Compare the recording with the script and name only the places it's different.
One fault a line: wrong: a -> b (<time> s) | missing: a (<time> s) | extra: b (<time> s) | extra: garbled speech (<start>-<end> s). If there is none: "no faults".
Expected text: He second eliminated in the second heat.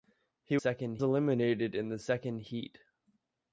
no faults